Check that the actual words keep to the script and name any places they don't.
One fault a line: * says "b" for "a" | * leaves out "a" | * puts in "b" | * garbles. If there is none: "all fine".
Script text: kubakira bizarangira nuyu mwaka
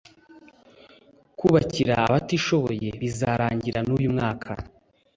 * puts in "abatishoboye"